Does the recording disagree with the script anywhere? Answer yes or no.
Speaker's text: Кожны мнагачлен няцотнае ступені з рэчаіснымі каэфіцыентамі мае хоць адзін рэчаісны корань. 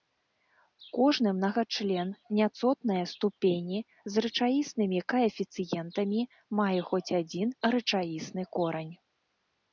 no